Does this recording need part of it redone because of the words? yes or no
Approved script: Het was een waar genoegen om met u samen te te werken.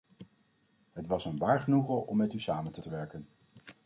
no